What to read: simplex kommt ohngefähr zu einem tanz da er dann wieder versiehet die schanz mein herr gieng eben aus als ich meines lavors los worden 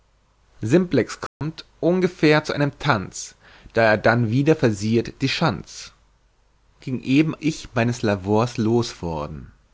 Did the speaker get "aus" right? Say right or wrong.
wrong